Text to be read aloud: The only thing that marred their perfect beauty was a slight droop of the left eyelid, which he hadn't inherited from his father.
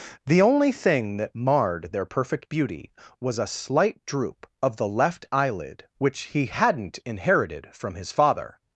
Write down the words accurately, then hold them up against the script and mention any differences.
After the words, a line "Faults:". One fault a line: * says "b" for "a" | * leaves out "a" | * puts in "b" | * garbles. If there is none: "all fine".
The only thing that marred their perfect beauty was a slight droop of the left eyelid, which he hadn't inherited from his father.
Faults:
all fine